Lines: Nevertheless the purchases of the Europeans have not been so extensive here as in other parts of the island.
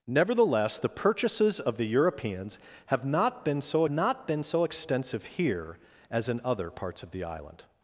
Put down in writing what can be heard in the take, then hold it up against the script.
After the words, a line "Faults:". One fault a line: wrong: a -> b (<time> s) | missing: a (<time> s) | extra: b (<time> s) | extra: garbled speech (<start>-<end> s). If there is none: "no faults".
Nevertheless the purchases of the Europeans have not been so not been so extensive here as in other parts of the island.
Faults:
extra: not been so (3.9 s)